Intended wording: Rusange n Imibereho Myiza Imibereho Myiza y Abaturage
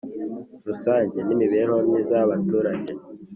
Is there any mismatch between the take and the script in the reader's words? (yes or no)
yes